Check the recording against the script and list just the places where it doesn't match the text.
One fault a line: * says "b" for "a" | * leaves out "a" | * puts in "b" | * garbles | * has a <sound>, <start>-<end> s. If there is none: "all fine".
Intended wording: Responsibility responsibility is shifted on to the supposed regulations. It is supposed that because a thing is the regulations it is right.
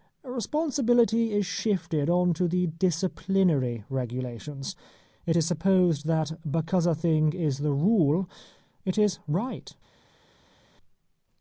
* leaves out "responsibility"
* says "disciplinary" for "supposed"
* says "rule" for "regulations"